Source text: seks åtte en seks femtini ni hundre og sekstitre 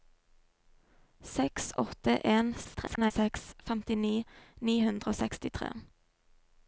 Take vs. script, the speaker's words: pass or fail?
fail